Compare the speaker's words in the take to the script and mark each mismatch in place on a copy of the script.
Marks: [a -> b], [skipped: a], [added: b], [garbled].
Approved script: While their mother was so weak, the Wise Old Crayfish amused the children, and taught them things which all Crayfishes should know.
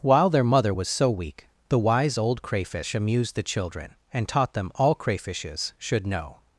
While their mother was so weak, the Wise Old Crayfish amused the children, and taught them [skipped: things which] all Crayfishes should know.